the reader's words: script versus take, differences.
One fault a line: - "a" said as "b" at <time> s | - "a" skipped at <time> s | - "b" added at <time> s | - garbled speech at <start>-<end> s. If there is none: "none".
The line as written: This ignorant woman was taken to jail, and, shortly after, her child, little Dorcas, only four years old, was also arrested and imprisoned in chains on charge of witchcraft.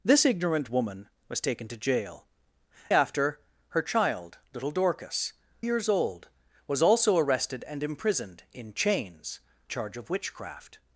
- "and shortly" skipped at 2.2 s
- "only four" skipped at 5.3 s
- "on" skipped at 9.4 s